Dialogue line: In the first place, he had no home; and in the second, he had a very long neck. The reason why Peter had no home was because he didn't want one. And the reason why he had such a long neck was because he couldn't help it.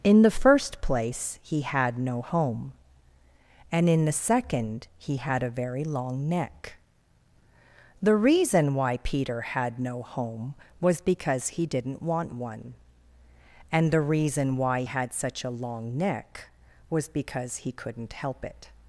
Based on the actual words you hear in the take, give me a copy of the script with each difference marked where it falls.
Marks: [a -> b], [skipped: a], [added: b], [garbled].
In the first place, he had no home; and in the second, he had a very long neck. The reason why Peter had no home was because he didn't want one. And the reason why [skipped: he] had such a long neck was because he couldn't help it.